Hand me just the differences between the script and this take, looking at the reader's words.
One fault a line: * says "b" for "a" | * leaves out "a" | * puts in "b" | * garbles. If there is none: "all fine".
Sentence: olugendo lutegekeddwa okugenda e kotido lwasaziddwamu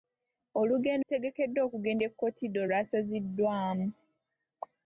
all fine